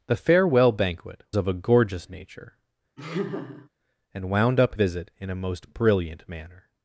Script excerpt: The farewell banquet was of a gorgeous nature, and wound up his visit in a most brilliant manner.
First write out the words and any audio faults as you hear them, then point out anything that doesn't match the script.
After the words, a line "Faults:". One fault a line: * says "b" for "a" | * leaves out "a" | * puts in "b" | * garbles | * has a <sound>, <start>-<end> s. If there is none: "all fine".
The farewell banquet of a gorgeous nature, and wound up visit in a most brilliant manner.
Faults:
* leaves out "was"
* has a laugh, 3.0-3.7 s
* leaves out "his"